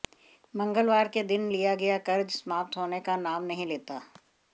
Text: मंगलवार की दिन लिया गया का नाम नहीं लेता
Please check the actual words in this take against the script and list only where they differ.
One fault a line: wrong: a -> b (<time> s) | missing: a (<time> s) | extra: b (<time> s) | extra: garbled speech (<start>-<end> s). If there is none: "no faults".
wrong: की -> के (1.1 s)
extra: कर्ज समाप्त होने (2.1 s)